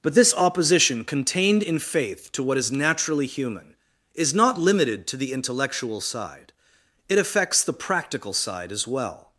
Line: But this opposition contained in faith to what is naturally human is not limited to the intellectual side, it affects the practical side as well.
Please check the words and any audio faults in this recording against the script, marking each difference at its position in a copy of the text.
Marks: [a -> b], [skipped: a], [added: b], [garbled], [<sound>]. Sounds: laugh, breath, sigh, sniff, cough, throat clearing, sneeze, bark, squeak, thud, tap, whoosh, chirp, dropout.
But this opposition contained in faith to what is naturally human is not limited to the intellectual side, it affects the practical side as well.